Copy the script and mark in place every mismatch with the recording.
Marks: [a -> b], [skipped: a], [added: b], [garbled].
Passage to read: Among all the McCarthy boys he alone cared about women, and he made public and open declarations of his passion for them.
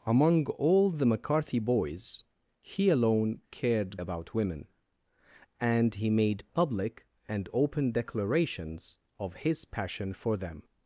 Among all the McCarthy boys he alone cared about women, and he made public and open declarations of his passion for them.